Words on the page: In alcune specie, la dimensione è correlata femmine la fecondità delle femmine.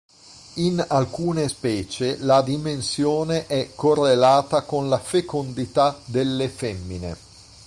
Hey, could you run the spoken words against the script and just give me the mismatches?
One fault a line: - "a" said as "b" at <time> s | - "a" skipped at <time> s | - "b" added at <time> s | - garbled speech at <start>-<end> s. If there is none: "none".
- "femmine" said as "con" at 4.6 s